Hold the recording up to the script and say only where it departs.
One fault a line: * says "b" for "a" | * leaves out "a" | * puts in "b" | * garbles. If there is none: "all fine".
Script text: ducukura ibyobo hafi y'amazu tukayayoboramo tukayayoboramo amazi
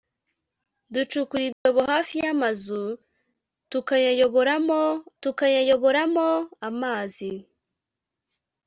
all fine